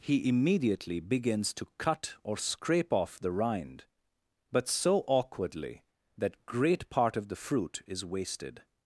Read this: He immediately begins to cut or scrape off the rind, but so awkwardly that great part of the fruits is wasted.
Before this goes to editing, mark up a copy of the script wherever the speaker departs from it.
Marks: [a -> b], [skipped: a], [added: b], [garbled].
He immediately begins to cut or scrape off the rind, but so awkwardly that great part of the [fruits -> fruit] is wasted.